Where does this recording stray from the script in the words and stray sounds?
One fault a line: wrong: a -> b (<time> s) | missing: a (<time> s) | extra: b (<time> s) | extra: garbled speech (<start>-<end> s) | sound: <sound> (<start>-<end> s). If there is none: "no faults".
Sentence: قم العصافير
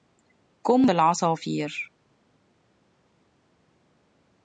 no faults